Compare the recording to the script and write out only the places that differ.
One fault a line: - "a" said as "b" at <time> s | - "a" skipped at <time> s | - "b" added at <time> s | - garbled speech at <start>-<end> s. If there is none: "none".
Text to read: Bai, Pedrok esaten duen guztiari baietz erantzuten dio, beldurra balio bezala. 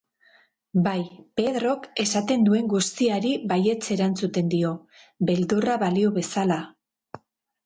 none